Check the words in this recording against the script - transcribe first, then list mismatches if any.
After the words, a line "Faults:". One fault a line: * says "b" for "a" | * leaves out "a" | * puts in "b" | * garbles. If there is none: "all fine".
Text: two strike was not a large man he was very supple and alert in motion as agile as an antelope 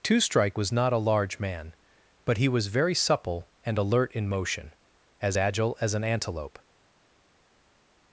two strike was not a large man but he was very supple and alert in motion as agile as an antelope
Faults:
* puts in "but"